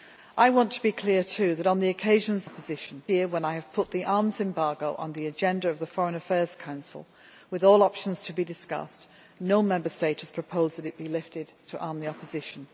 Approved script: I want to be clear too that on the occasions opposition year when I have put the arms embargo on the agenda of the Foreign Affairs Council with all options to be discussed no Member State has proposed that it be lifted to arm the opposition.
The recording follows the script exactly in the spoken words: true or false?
true